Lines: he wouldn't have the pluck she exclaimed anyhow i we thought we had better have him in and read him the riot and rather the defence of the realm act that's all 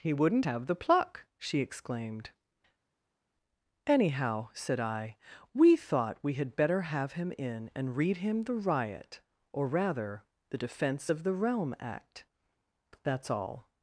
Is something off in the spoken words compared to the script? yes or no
yes